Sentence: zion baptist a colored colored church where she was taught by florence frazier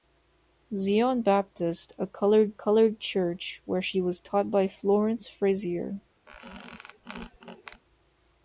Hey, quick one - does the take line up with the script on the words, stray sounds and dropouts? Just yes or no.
no